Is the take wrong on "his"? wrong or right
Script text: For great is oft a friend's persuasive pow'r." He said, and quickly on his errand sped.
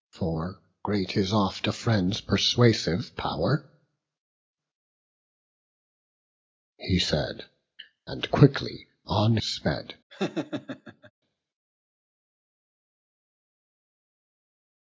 wrong